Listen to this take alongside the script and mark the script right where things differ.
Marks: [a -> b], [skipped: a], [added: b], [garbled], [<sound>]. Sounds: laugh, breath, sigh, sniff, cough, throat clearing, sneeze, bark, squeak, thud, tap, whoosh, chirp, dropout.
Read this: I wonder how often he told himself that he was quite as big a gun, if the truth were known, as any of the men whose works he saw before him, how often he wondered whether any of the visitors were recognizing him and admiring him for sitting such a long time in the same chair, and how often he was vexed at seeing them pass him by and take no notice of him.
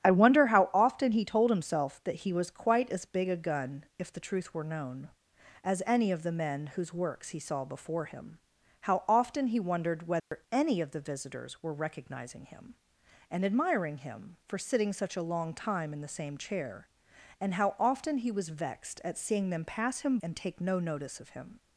I wonder how often he told himself that he was quite as big a gun, if the truth were known, as any of the men whose works he saw before him, how often he wondered whether [dropout] any of the visitors were recognizing him and admiring him for sitting such a long time in the same chair, and how often he was vexed at seeing them pass him [skipped: by] and take no notice of him.